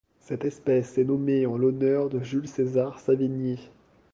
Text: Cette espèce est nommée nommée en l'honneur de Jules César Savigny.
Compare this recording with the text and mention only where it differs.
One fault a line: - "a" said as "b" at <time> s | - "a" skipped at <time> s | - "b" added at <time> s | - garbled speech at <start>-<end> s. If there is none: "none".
- "nommée" skipped at 1.4 s